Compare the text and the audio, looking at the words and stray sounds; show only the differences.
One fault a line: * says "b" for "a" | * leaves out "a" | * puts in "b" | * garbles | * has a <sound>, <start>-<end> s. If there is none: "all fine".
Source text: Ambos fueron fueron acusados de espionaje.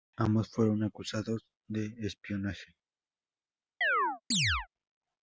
* leaves out "fueron"
* has a chirp, 3.8-4.7 s